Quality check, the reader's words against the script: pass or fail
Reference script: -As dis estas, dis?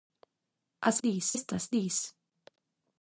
pass